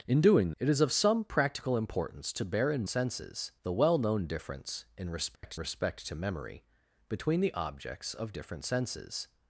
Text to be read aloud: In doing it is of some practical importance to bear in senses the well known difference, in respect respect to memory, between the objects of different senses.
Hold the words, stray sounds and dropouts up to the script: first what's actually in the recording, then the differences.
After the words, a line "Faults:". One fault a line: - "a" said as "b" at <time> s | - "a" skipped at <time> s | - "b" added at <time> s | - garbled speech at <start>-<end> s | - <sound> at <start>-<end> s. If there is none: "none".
In doing it is of some practical importance to bear in senses the well known difference, in respect respect to memory, between the objects of different senses.
Faults:
- dropout at 5.4-5.4 s